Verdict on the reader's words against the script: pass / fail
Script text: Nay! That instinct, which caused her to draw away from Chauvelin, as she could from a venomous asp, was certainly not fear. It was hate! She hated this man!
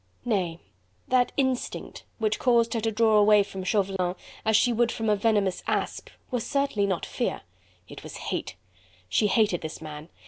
fail